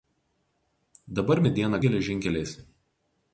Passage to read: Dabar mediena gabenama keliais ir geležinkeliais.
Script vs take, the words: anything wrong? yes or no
yes